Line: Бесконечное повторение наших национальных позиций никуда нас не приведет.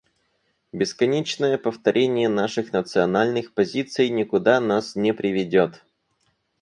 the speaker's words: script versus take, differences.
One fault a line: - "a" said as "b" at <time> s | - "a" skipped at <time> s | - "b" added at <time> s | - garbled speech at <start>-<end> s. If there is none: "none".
none